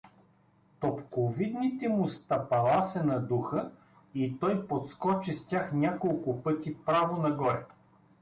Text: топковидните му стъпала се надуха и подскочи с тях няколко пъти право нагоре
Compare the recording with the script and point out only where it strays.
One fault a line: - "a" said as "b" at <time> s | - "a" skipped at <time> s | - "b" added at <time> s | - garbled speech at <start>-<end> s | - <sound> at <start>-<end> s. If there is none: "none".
- "той" added at 4.4 s